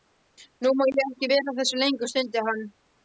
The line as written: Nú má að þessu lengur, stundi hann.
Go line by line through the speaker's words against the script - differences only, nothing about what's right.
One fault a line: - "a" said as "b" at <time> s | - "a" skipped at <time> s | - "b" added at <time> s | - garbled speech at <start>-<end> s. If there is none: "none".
- "ég ekki vera" added at 0.9 s